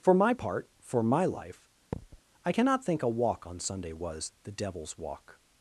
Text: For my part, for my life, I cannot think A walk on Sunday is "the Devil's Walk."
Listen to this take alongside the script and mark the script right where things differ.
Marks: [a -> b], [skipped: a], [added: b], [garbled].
For my part, for my life, I cannot think A walk on Sunday [is -> was] "the Devil's Walk."